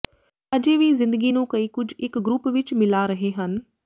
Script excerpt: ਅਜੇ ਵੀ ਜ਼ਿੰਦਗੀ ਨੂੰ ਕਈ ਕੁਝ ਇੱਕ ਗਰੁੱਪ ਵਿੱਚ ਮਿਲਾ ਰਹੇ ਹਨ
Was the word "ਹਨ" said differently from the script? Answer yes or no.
no